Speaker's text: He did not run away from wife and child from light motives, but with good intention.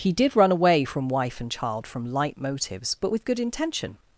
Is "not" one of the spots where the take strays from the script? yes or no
yes